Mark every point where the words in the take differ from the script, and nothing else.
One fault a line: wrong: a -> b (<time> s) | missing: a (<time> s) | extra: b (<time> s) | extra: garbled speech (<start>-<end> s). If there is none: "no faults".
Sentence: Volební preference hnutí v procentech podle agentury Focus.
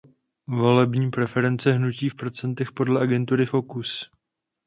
no faults